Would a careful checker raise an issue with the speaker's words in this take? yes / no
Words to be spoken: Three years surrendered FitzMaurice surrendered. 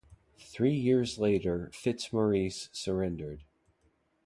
yes